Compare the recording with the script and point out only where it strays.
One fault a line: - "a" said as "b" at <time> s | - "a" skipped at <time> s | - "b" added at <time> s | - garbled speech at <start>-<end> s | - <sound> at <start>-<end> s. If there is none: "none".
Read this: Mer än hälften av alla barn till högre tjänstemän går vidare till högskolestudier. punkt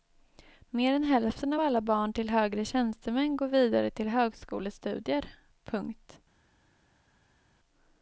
none